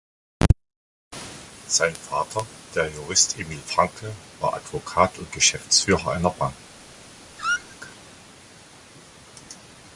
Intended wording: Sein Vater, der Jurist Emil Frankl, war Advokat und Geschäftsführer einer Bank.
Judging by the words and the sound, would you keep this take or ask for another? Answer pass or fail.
fail